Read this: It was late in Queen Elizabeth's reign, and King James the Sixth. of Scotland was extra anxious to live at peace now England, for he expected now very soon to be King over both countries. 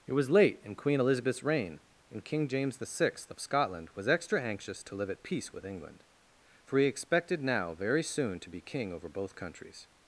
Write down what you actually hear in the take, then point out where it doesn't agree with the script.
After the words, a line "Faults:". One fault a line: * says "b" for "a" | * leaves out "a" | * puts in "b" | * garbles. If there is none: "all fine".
It was late in Queen Elizabeth's reign, and King James the Sixth. of Scotland was extra anxious to live at peace with England, for he expected now very soon to be King over both countries.
Faults:
* says "with" for "now"